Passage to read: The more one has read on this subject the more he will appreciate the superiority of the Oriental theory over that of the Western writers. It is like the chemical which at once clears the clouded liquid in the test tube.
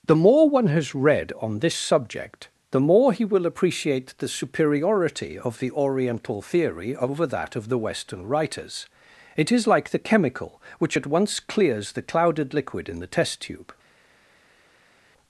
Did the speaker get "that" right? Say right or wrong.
right